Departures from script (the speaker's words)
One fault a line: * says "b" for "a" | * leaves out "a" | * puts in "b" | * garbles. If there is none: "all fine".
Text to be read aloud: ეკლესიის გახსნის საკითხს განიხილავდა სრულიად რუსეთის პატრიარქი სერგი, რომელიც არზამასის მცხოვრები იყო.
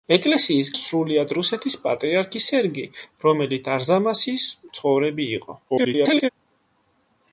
* leaves out "გახსნის საკითხს განიხილავდა"
* garbles